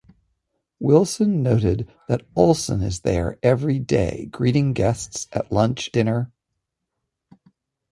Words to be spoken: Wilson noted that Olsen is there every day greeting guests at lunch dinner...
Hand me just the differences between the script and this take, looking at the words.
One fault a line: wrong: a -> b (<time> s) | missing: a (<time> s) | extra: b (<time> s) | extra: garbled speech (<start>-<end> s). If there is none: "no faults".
no faults